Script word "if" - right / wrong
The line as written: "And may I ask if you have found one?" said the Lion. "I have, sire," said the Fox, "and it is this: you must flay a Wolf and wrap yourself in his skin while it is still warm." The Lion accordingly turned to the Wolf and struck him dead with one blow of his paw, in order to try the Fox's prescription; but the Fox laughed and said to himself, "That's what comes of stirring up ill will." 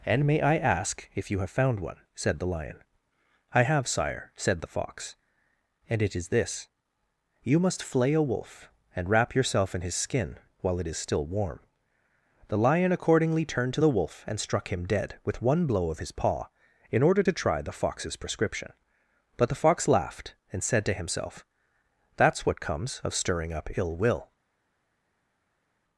right